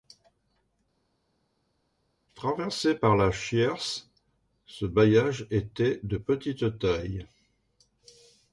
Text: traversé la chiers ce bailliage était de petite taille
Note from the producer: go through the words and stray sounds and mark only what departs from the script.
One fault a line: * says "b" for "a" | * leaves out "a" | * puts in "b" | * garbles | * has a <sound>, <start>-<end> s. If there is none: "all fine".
* puts in "par"